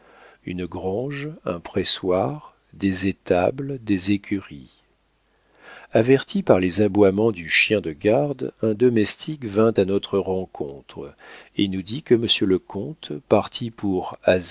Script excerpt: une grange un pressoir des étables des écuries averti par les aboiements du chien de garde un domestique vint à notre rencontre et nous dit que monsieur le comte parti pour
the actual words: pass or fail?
pass